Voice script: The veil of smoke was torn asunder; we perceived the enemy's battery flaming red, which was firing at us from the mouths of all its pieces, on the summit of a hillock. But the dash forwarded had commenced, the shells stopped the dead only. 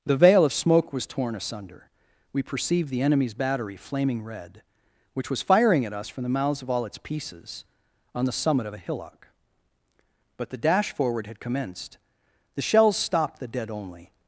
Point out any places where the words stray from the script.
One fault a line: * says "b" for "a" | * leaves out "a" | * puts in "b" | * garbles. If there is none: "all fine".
* says "forward" for "forwarded"